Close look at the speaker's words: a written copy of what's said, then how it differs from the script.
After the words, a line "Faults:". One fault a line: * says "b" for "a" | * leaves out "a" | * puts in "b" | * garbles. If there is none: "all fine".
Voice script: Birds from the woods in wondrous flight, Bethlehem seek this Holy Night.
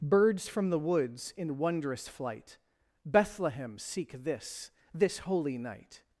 Birds from the woods in wondrous flight, Bethlehem seek this this Holy Night.
Faults:
* puts in "this"